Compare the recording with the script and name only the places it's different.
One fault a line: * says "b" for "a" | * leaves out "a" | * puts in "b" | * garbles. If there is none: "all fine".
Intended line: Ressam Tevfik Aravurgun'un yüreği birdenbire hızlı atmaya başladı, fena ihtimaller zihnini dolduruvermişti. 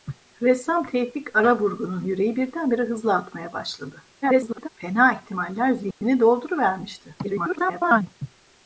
* garbles
* garbles